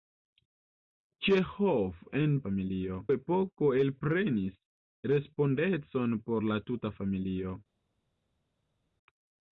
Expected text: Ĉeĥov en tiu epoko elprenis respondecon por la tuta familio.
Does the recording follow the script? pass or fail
fail